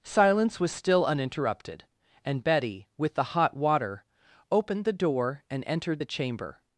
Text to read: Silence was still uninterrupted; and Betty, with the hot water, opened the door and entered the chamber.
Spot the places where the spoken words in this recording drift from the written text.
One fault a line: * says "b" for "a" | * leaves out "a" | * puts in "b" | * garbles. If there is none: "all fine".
all fine